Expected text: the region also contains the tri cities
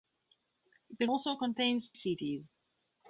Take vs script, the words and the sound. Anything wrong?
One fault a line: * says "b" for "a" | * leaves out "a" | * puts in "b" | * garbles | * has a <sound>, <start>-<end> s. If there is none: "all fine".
* leaves out "region"
* leaves out "the tri"